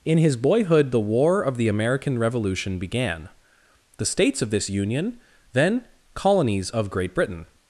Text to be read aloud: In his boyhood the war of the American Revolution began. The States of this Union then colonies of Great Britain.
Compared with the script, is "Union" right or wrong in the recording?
right